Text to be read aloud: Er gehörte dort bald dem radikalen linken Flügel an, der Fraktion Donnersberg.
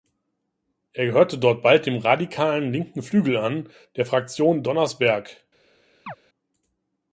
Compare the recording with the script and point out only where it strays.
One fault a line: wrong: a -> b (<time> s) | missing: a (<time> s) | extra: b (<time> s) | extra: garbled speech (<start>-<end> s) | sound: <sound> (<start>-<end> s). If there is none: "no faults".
sound: chirp (6.1-6.2 s)